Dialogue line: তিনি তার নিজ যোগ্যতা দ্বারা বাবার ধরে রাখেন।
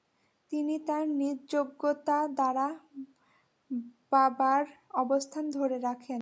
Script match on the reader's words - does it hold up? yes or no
no